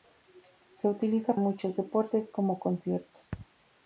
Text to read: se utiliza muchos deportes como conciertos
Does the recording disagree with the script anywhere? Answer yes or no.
no